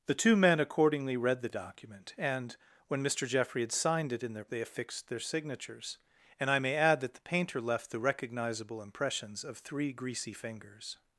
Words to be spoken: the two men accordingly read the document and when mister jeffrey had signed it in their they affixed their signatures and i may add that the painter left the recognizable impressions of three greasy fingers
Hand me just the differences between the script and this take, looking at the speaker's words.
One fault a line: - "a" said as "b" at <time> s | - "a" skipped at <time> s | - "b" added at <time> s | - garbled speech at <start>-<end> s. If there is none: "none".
none